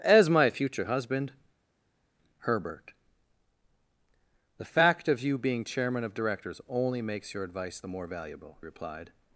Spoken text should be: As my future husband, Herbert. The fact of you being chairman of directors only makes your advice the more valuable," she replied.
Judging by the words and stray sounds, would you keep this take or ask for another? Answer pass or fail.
fail